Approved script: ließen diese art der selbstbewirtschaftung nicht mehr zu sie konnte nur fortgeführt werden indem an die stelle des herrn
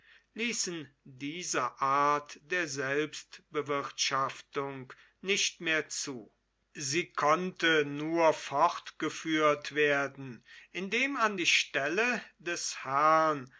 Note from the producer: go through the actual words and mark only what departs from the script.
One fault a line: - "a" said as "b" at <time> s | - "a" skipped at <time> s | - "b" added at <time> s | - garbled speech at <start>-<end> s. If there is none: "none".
none